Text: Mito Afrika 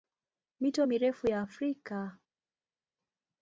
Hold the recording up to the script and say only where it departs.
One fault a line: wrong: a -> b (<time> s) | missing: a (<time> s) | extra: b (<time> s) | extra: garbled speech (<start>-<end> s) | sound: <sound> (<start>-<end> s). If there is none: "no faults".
extra: mirefu ya (0.8 s)